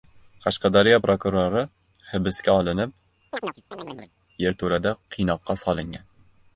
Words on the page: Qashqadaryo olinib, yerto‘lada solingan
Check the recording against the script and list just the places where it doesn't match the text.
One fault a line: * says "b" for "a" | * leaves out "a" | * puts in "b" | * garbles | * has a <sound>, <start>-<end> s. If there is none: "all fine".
* puts in "prokurori hibsga"
* has a chirp, 3.3-4.1 s
* puts in "qiynoqqa"